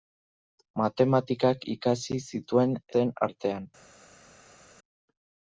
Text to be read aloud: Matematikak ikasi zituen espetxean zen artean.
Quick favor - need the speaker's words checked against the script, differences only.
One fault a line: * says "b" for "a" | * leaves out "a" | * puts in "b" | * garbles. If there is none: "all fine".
* leaves out "espetxean"